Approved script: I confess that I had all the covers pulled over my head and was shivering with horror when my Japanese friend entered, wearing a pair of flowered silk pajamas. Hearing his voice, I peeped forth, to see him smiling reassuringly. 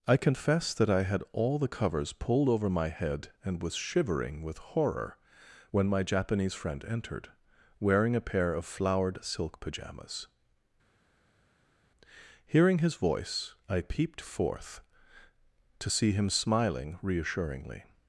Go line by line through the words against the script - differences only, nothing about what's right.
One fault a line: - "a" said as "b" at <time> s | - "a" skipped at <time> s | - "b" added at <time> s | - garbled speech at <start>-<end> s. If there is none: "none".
none